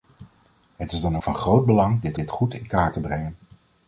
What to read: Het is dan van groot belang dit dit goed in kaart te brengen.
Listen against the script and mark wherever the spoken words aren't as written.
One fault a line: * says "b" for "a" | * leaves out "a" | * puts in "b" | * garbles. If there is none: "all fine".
all fine